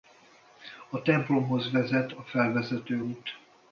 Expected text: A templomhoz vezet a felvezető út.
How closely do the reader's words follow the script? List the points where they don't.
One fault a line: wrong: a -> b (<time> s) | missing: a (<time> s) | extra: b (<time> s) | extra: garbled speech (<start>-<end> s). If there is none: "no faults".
no faults